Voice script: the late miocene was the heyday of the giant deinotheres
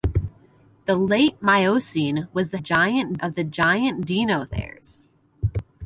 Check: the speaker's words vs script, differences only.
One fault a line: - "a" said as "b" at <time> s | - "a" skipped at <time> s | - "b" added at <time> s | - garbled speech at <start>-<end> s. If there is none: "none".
- "heyday" said as "giant" at 2.6 s